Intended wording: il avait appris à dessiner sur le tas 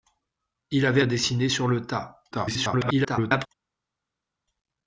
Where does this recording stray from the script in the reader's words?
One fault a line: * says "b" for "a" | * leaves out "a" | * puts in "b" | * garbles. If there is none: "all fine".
* leaves out "appris"
* garbles